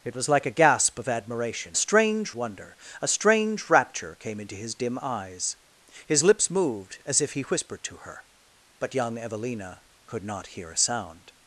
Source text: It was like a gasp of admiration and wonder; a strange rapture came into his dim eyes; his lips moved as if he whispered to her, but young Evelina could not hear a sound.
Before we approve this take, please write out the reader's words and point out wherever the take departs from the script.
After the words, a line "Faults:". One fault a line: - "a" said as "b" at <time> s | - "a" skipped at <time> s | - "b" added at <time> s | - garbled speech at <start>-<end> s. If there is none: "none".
It was like a gasp of admiration strange wonder; a strange rapture came into his dim eyes; his lips moved as if he whispered to her, but young Evelina could not hear a sound.
Faults:
- "and" said as "strange" at 1.7 s